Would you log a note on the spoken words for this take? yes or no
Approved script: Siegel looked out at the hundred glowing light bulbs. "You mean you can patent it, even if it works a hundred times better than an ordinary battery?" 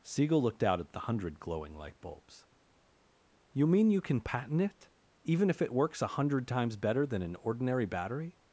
no